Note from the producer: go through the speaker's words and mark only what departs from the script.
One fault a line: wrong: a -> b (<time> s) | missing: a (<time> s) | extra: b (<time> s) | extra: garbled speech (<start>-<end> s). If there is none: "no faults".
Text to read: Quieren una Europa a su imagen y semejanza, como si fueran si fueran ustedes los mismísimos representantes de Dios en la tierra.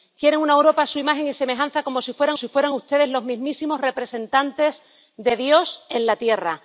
no faults